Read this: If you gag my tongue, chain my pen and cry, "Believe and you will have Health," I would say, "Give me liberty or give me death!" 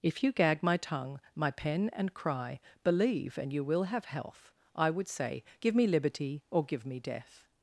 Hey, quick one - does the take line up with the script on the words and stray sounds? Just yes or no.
no